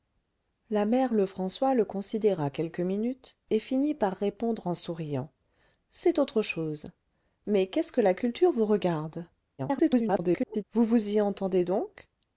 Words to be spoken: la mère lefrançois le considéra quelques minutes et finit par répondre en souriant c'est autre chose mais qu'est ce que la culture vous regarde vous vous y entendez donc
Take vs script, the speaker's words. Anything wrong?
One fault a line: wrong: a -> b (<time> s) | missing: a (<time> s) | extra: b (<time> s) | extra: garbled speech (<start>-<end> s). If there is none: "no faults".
extra: garbled speech (9.6-10.6 s)